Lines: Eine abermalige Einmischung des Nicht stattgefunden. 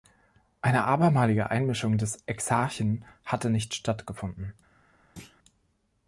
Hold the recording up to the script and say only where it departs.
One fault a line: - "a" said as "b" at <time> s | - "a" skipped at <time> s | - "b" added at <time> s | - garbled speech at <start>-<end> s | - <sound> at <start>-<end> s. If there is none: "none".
- "Exarchen hatte" added at 2.2 s
- thud at 5.2-5.4 s